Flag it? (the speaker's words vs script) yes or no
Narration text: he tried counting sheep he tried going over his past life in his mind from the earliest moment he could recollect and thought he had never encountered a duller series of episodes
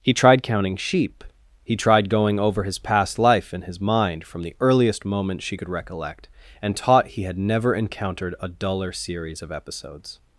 yes